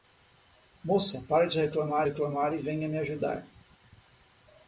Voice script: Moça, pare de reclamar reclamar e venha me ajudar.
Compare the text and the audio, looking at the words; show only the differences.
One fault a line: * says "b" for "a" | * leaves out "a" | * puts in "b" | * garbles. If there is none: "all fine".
all fine